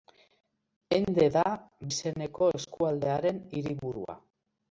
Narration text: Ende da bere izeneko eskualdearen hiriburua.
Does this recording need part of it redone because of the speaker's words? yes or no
yes